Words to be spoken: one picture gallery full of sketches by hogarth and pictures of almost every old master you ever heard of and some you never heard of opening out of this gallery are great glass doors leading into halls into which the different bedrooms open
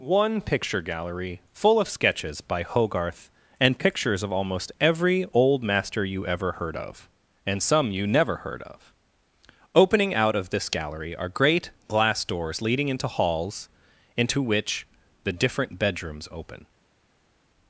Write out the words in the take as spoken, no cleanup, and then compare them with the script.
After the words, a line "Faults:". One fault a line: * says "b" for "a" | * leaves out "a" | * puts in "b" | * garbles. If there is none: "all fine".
one picture gallery full of sketches by hogarth and pictures of almost every old master you ever heard of and some you never heard of opening out of this gallery are great glass doors leading into halls into which the different bedrooms open
Faults:
all fine